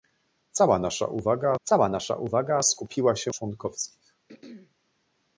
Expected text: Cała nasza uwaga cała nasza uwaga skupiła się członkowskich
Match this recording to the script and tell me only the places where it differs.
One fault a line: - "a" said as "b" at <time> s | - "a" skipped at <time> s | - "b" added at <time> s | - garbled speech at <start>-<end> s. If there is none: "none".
none